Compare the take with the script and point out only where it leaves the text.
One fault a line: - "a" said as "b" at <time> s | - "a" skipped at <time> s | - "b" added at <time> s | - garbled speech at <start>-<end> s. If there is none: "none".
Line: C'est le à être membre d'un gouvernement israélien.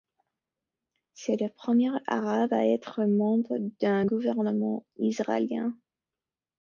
- "premier Arabe" added at 1.5 s